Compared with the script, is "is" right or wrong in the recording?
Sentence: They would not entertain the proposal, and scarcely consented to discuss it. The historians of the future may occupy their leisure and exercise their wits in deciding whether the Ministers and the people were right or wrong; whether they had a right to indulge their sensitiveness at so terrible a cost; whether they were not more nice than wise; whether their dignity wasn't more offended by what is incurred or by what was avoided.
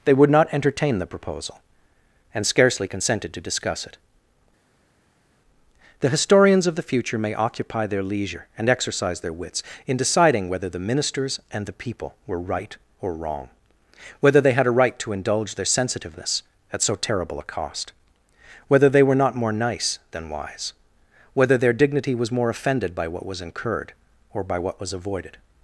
wrong